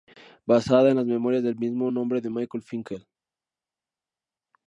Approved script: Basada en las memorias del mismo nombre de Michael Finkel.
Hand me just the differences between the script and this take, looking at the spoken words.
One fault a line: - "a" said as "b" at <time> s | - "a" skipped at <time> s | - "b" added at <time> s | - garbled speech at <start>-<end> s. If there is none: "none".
none